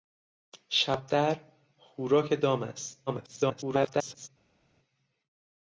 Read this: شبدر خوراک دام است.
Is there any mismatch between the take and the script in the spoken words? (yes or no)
yes